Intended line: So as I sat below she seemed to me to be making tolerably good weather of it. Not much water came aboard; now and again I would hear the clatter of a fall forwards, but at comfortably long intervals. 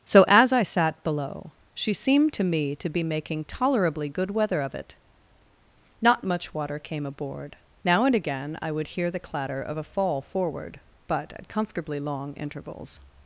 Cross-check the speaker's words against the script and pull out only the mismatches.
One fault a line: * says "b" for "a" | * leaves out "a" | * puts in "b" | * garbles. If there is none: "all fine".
* says "forward" for "forwards"